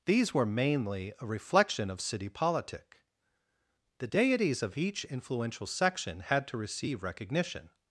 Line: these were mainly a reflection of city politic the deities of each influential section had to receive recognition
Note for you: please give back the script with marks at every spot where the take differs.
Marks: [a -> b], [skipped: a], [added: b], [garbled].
these were mainly a reflection of city politic the deities of each influential section had to receive recognition